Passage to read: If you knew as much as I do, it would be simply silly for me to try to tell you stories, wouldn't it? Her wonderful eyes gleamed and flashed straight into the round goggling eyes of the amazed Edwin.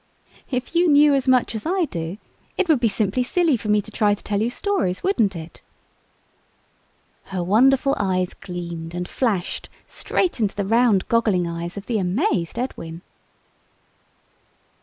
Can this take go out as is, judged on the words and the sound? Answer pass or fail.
pass